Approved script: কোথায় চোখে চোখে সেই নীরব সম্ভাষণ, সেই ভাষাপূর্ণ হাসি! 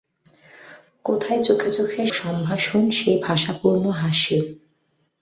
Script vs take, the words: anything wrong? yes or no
yes